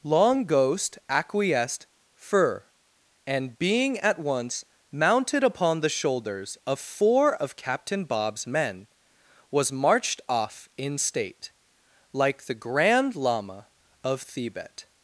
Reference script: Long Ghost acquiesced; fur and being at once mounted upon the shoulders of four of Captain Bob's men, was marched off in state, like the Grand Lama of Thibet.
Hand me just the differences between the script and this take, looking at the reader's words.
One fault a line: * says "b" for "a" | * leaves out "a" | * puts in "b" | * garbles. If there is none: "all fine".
all fine